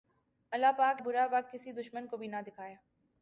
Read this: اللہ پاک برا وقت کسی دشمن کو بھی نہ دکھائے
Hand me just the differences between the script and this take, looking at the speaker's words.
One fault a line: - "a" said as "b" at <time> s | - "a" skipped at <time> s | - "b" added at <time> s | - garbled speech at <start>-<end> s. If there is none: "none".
none